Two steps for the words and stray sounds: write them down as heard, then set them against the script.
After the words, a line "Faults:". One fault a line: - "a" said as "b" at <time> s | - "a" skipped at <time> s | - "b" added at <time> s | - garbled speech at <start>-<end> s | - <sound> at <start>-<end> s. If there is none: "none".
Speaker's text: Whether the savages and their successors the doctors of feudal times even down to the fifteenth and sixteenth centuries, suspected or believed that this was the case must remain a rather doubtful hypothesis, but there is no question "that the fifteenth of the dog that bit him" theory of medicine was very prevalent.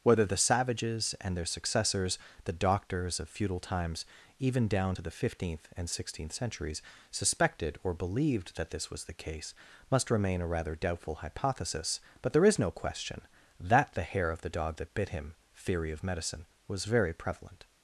Whether the savages and their successors the doctors of feudal times even down to the fifteenth and sixteenth centuries, suspected or believed that this was the case must remain a rather doubtful hypothesis, but there is no question "that the hair of the dog that bit him" theory of medicine was very prevalent.
Faults:
- "fifteenth" said as "hair" at 14.0 s